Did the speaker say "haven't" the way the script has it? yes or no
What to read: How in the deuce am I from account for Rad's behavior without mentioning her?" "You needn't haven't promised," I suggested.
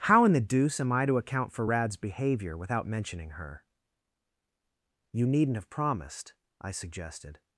no